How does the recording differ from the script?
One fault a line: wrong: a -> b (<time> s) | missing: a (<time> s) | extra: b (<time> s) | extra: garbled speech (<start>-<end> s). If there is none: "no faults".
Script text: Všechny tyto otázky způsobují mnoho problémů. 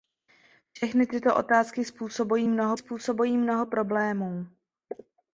extra: způsobují mnoho (2.8 s)